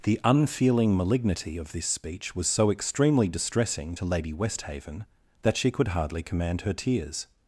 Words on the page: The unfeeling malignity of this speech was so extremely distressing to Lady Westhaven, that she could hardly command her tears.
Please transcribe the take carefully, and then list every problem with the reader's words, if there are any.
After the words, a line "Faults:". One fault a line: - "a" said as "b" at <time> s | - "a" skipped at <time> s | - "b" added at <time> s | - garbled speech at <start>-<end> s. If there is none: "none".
The unfeeling malignity of this speech was so extremely distressing to Lady Westhaven, that she could hardly command her tears.
Faults:
none